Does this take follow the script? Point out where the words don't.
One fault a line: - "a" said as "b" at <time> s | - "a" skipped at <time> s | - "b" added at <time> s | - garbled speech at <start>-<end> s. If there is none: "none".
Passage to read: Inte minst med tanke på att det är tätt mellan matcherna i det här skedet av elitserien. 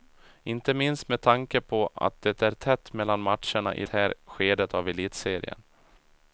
- "det" skipped at 3.9 s